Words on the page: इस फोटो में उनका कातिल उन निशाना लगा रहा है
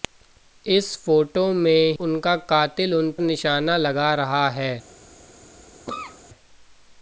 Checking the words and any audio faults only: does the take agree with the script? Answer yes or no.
no